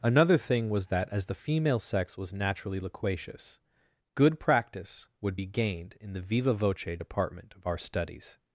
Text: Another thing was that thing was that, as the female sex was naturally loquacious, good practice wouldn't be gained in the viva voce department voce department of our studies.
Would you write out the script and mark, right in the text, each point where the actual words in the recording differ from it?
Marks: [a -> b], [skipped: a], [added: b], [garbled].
Another thing was that [skipped: thing was that,] as the female sex was naturally loquacious, good practice [wouldn't -> would] be gained in the viva voce department [skipped: voce department] of our studies.